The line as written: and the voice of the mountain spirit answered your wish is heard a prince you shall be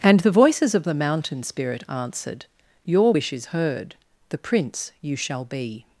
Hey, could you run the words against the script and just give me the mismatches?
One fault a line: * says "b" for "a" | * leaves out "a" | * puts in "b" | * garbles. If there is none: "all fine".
* says "voices" for "voice"
* says "the" for "a"